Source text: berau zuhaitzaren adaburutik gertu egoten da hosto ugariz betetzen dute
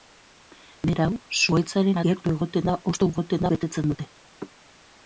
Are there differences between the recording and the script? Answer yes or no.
yes